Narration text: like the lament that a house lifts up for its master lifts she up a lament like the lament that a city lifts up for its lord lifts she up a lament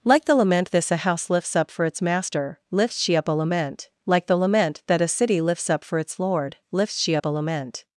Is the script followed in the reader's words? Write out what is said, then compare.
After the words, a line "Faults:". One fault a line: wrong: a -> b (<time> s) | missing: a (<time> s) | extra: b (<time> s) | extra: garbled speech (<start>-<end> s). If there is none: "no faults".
like the lament this a house lifts up for its master lifts she up a lament like the lament that a city lifts up for its lord lifts she up a lament
Faults:
wrong: that -> this (0.7 s)